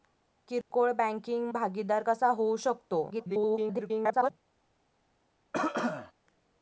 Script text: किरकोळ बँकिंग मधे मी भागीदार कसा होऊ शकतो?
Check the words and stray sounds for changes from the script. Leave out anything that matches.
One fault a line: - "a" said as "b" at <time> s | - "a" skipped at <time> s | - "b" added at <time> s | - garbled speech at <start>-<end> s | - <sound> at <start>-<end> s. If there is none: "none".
- dropout at 0.6-0.7 s
- "मधे मी" skipped at 1.5 s
- garbled speech at 3.1-4.3 s
- cough at 5.5-6.1 s